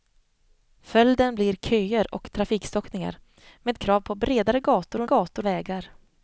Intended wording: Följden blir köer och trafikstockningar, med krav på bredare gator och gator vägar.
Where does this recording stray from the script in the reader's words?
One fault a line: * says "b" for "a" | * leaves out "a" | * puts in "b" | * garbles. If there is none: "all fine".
all fine